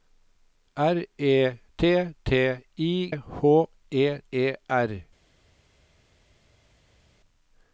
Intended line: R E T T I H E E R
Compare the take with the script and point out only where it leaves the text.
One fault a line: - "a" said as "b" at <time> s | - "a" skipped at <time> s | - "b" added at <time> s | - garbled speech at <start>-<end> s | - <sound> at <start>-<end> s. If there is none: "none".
none